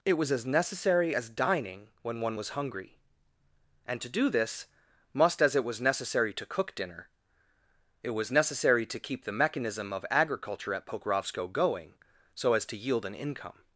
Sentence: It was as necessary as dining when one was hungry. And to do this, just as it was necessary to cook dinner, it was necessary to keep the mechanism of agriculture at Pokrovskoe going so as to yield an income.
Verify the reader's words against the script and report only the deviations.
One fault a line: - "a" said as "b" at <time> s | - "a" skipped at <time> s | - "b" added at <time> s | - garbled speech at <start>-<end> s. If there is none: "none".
- "just" said as "must" at 5.1 s